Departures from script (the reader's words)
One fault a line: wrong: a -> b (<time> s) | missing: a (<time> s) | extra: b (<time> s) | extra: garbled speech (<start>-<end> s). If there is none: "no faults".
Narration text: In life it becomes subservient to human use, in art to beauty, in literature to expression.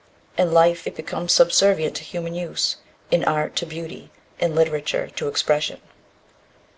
no faults